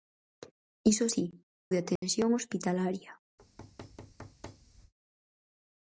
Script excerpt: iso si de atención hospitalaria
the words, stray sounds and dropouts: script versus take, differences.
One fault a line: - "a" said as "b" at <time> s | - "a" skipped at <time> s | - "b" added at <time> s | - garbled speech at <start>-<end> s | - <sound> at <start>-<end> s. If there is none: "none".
- dropout at 2.0-2.0 s
- thud at 3.4-4.9 s